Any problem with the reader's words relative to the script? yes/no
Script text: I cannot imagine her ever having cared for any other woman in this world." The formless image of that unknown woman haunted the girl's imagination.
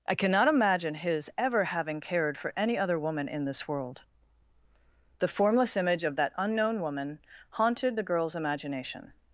yes